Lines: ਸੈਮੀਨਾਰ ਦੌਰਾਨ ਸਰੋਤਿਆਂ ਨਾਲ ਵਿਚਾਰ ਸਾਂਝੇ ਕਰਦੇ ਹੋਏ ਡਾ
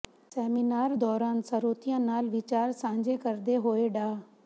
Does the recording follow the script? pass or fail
pass